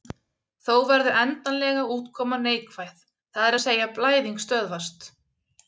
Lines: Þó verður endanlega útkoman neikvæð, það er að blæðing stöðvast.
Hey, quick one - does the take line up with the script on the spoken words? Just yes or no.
no